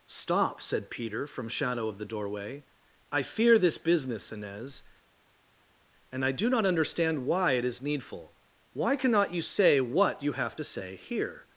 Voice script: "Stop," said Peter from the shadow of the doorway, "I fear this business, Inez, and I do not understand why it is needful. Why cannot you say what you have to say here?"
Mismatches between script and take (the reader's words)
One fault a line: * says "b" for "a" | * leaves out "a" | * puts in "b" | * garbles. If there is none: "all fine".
* leaves out "the"